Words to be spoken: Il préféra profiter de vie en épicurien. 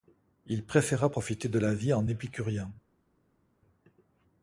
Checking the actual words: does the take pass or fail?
fail